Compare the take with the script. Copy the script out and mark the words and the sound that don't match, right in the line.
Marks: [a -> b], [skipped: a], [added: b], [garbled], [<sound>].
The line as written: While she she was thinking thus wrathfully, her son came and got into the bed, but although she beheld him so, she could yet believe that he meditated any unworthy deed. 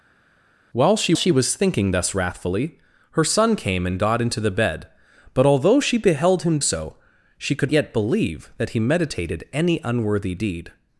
While she she was thinking thus wrathfully, her son came and got into the bed, but although she beheld him so, she could yet believe that he meditated any unworthy deed.